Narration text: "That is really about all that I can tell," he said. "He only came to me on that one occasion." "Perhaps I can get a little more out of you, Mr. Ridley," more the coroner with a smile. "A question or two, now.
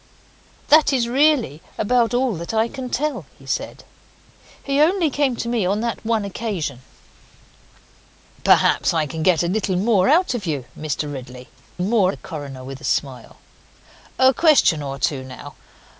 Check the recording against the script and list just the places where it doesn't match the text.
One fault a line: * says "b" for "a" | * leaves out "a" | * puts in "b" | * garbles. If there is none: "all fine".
all fine